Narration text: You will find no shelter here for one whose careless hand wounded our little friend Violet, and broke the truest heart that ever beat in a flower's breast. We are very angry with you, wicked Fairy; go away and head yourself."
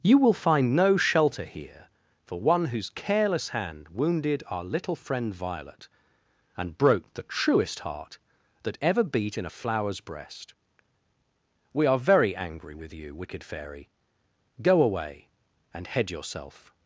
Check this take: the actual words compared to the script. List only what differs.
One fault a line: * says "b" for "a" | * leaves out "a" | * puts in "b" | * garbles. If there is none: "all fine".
all fine